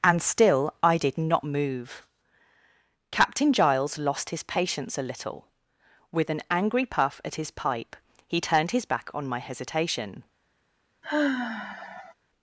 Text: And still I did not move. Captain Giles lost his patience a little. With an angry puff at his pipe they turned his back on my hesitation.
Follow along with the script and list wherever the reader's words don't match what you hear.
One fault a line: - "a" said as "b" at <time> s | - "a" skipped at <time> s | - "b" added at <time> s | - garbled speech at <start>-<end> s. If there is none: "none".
- "they" said as "he" at 8.3 s